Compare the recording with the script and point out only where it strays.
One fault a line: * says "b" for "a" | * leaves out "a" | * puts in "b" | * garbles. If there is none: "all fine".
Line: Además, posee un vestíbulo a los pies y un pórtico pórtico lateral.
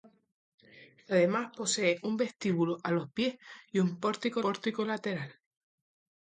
all fine